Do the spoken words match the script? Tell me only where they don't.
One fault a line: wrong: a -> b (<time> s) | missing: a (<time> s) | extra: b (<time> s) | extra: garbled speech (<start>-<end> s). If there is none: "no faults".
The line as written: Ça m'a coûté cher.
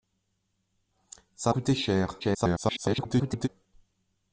missing: m'a (1.5 s)
extra: garbled speech (2.2-3.5 s)